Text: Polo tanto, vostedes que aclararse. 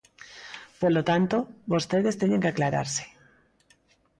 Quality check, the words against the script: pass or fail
fail